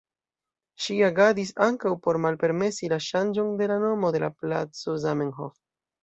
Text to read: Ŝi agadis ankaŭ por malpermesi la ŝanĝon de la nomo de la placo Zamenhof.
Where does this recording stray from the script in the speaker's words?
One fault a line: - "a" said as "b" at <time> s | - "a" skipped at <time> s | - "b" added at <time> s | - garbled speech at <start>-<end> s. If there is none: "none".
none